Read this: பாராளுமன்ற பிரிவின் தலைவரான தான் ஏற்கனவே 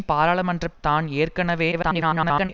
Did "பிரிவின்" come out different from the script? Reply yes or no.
yes